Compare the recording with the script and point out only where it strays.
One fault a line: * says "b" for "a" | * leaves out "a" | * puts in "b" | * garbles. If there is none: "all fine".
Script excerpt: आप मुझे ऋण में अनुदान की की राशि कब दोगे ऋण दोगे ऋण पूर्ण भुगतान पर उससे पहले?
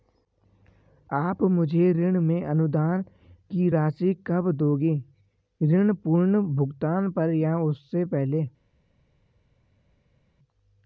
* leaves out "की"
* leaves out "दोगे ऋण"
* puts in "या"